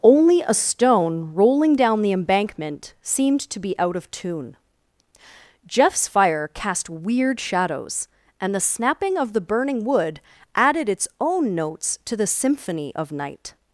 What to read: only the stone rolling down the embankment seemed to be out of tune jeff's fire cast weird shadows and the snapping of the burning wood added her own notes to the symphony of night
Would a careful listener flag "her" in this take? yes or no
yes